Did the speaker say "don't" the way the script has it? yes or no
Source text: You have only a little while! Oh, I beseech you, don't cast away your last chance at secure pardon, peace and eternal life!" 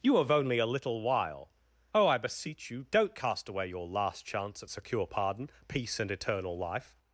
yes